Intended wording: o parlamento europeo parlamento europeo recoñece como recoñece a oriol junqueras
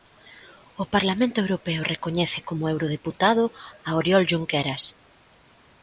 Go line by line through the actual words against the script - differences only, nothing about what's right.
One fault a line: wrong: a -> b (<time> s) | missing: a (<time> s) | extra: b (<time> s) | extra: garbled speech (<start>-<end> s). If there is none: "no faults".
missing: parlamento europeo (1.8 s)
wrong: recoñece -> eurodeputado (2.7 s)